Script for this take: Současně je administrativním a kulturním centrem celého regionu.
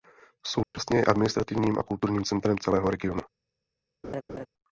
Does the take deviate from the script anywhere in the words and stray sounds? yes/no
yes